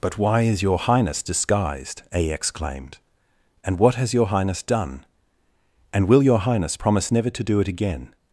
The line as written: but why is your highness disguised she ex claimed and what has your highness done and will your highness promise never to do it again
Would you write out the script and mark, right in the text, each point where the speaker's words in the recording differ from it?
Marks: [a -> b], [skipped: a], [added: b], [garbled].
but why is your highness disguised [she ex claimed -> a exclaimed] and what has your highness done and will your highness promise never to do it again